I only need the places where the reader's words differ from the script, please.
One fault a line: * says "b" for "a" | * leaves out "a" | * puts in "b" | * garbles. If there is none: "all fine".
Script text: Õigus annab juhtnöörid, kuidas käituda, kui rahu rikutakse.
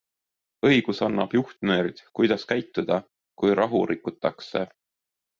all fine